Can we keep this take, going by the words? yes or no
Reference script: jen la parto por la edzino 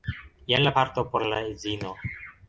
yes